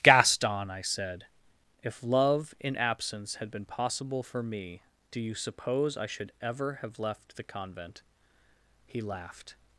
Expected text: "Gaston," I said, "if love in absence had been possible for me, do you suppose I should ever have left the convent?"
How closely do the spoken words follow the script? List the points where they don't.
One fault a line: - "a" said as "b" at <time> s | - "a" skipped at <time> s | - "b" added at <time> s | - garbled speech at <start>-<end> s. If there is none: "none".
- "He laughed" added at 8.9 s